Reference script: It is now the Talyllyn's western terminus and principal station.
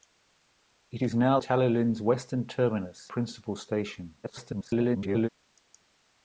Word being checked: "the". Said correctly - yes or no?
no